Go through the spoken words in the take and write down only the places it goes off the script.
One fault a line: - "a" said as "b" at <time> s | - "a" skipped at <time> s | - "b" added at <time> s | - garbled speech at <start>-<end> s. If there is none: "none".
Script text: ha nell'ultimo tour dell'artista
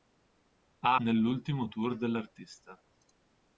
none